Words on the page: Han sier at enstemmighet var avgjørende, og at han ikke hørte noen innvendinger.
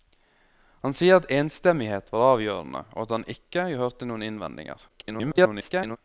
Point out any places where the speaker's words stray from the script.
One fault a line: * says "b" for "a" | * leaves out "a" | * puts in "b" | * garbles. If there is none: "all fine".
* garbles